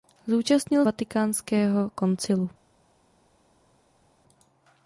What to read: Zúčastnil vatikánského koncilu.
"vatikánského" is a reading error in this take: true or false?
false